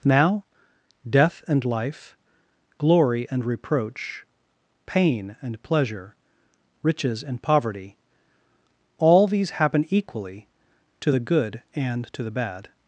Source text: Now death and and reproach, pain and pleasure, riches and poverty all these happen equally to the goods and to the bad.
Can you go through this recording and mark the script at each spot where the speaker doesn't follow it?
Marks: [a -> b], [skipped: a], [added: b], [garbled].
Now death and [added: life glory] and reproach, pain and pleasure, riches and poverty all these happen equally to the [goods -> good] and to the bad.